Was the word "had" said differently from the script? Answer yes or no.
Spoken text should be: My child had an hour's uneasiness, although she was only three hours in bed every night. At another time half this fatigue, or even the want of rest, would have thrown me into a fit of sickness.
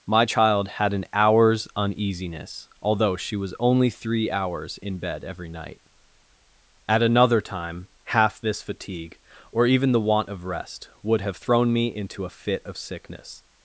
no